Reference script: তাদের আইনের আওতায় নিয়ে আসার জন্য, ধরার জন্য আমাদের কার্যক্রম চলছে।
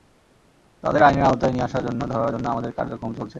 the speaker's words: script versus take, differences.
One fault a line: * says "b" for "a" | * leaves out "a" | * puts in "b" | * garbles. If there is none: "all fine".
all fine